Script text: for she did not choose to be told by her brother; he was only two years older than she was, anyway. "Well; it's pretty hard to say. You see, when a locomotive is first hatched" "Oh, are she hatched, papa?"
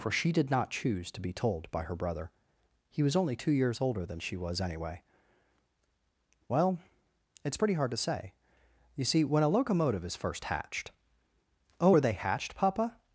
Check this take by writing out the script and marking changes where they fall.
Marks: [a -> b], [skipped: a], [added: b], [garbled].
for she did not choose to be told by her brother; he was only two years older than she was, anyway. "Well; it's pretty hard to say. You see, when a locomotive is first hatched" "Oh, are [she -> they] hatched, papa?"